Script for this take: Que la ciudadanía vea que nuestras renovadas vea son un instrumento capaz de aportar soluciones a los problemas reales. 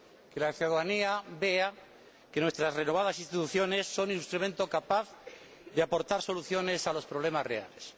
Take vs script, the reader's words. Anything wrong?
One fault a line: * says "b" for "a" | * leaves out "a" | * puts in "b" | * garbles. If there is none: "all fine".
* says "instituciones" for "vea"